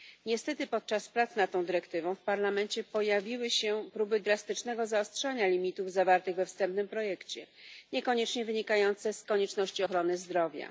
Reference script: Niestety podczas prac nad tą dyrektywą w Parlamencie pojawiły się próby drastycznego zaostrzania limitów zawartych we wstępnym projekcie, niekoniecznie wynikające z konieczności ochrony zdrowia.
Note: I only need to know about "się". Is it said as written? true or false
true